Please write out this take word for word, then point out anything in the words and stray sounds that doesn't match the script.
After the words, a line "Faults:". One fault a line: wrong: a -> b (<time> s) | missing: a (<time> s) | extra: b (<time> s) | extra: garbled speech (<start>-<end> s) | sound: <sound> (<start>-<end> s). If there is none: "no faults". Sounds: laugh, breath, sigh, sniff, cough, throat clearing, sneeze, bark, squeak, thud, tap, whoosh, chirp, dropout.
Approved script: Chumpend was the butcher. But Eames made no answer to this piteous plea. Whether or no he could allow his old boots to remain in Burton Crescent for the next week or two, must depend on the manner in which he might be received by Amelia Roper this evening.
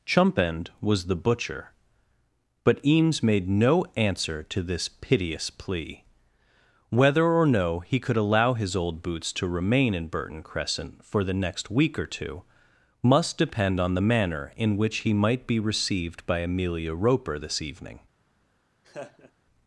Chumpend was the butcher. But Eames made no answer to this piteous plea. Whether or no he could allow his old boots to remain in Burton Crescent for the next week or two, must depend on the manner in which he might be received by Amelia Roper this evening.
Faults:
sound: laugh (18.8-19.3 s)